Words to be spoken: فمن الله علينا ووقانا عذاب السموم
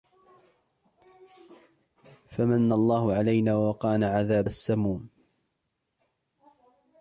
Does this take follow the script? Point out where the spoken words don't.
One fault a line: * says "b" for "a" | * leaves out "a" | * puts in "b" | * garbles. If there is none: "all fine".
all fine